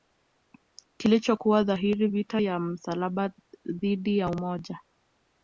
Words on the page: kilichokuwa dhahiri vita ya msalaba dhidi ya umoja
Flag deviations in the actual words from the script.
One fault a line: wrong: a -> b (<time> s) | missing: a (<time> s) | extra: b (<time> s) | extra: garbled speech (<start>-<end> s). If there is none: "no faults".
no faults